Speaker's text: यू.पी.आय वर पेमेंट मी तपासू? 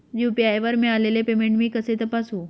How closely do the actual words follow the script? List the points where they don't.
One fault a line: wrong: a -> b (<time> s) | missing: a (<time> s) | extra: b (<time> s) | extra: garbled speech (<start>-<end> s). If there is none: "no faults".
extra: मिळालेले (0.8 s)
extra: कसे (1.7 s)